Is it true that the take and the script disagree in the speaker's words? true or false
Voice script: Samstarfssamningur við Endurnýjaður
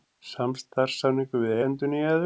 false